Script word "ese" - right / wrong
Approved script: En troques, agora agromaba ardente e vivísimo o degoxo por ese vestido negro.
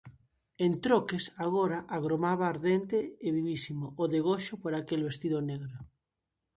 wrong